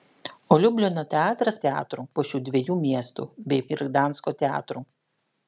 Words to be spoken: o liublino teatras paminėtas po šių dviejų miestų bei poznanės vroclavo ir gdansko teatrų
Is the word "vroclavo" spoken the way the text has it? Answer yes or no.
no